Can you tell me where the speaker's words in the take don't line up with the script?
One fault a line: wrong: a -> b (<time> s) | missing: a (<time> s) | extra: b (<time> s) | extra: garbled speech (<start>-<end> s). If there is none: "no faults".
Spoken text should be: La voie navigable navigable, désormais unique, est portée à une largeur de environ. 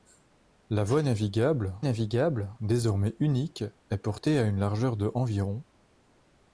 no faults